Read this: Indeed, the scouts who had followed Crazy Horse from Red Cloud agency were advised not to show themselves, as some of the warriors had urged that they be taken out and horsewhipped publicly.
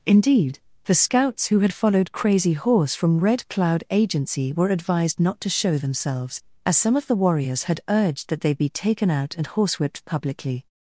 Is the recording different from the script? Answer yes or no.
no